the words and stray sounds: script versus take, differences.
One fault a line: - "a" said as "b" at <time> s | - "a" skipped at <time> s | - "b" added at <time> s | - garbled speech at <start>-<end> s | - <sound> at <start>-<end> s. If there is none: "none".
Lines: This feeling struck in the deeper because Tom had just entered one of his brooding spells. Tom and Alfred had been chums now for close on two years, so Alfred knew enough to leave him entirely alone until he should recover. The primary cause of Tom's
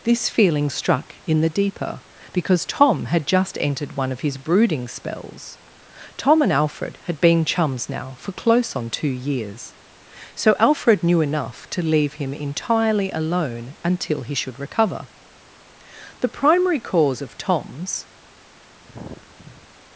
- sigh at 18.8-19.7 s